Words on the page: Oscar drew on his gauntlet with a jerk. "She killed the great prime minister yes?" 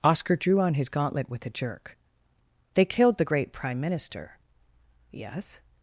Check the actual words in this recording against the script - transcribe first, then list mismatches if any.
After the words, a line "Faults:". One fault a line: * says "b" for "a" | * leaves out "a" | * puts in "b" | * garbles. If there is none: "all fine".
Oscar drew on his gauntlet with a jerk. "They killed the great prime minister yes?"
Faults:
* says "They" for "She"